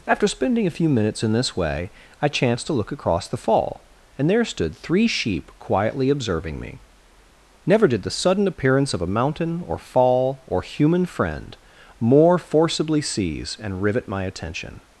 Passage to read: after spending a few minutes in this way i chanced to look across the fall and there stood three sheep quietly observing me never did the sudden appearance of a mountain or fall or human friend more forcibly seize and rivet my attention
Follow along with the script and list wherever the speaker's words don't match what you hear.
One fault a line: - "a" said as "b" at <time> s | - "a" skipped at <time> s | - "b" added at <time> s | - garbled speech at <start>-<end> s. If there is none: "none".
none